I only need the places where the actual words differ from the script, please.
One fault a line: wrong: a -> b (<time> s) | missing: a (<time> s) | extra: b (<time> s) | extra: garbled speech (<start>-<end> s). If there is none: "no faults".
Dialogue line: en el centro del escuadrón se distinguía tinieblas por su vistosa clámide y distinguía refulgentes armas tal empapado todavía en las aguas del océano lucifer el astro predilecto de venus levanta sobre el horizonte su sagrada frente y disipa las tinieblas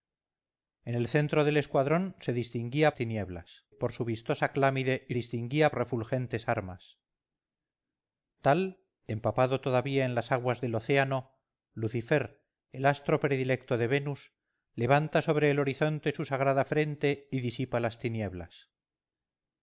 no faults